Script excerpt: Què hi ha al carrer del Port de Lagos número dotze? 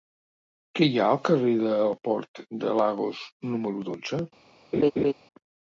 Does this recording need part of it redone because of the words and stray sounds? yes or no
yes